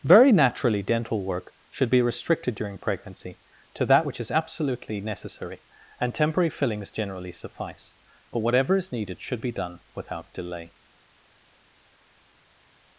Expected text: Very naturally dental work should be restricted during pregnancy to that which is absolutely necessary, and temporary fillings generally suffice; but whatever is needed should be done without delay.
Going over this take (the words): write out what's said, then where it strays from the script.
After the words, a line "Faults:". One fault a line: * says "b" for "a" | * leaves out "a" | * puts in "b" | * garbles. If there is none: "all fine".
Very naturally dental work should be restricted during pregnancy to that which is absolutely necessary, and temporary fillings generally suffice; but whatever is needed should be done without delay.
Faults:
all fine